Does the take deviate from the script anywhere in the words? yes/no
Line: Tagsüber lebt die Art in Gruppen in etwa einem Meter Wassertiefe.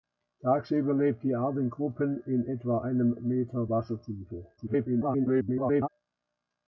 yes